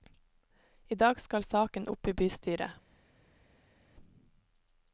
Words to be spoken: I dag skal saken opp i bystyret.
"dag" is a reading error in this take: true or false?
false